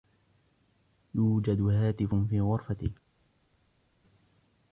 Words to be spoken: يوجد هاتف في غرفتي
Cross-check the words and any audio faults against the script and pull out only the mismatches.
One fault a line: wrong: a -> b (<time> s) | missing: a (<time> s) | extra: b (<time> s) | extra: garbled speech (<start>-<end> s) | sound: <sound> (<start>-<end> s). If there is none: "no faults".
no faults